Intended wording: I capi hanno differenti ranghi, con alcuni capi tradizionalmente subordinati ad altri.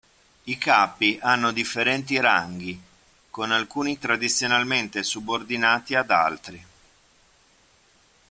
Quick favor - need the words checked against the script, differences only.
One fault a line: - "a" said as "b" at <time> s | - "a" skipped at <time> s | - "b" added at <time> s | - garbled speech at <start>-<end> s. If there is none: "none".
- "capi" skipped at 4.0 s